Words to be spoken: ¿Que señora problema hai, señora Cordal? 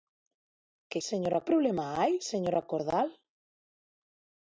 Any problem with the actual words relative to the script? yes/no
no